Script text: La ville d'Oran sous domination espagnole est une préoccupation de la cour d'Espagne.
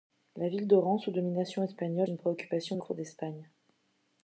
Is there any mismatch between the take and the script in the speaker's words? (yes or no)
yes